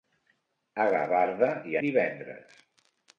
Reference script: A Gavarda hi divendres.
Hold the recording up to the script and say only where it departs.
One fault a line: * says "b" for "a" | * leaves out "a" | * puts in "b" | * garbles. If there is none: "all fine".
all fine